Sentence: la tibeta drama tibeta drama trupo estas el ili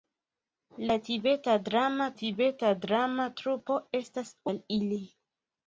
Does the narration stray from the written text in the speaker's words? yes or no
no